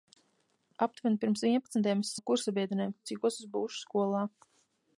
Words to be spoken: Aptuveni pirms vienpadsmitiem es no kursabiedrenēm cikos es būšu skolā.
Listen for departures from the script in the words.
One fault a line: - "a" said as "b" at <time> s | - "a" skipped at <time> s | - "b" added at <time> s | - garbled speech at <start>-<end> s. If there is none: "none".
none